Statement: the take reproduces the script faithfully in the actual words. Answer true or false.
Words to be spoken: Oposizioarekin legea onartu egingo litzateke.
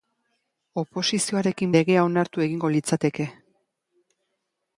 true